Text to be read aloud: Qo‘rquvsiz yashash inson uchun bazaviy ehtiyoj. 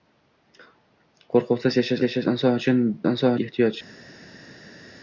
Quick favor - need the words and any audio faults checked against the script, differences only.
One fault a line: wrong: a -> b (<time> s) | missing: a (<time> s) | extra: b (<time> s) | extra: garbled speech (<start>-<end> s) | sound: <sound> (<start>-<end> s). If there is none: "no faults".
extra: yashash (2.0 s)
wrong: bazaviy -> inson (3.1 s)